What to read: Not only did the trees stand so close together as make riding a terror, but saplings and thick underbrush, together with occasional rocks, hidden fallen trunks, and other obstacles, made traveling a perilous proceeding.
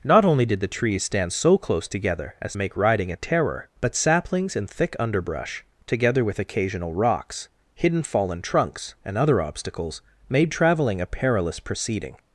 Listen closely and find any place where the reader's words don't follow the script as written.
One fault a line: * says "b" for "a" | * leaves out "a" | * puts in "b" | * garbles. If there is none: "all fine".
all fine